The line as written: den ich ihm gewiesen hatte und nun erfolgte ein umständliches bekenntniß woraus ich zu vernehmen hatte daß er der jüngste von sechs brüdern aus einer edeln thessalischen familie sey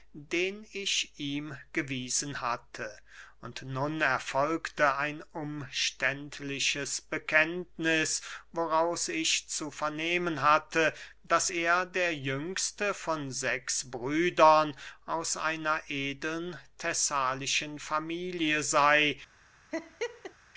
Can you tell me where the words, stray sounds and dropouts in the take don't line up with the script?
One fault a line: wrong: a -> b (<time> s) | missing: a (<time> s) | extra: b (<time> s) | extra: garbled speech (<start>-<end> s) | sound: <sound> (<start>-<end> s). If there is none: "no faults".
sound: laugh (19.7-20.3 s)